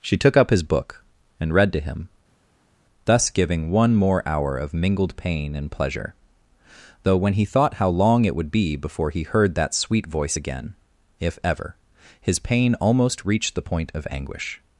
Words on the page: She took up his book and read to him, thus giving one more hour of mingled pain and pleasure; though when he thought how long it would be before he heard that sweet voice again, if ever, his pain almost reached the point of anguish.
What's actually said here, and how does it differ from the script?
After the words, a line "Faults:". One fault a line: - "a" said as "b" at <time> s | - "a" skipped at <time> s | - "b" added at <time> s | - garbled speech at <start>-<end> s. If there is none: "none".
She took up his book and read to him, thus giving one more hour of mingled pain and pleasure; though when he thought how long it would be before he heard that sweet voice again, if ever, his pain almost reached the point of anguish.
Faults:
none